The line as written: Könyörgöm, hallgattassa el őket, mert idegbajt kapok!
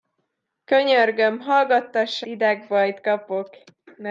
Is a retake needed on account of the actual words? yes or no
yes